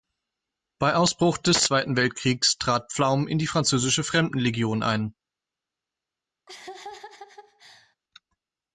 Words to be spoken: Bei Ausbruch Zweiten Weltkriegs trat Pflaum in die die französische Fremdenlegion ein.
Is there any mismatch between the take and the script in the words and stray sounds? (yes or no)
yes